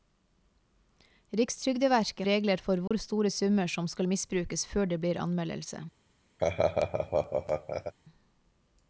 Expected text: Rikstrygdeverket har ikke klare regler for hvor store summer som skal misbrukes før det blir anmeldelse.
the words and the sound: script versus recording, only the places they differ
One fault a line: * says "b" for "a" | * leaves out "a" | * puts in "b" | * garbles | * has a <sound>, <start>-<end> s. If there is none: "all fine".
* leaves out "har ikke klare"
* has a dropout, 2.9-2.9 s
* has a laugh, 6.4-7.9 s